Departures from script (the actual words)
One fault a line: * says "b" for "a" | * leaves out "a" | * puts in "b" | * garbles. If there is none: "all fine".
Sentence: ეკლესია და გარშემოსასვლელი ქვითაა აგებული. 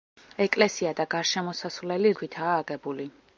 all fine